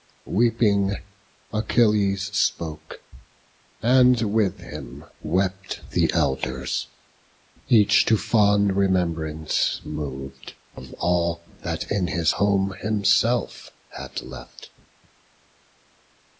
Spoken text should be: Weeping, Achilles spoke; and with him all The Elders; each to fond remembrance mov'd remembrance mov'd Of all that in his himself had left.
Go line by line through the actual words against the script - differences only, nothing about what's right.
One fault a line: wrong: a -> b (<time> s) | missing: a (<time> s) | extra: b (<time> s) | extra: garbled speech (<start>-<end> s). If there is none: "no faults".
wrong: all -> wept (5.2 s)
missing: remembrance mov'd (10.6 s)
extra: home (12.3 s)